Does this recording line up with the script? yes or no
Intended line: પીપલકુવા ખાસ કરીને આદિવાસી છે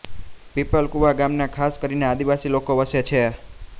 no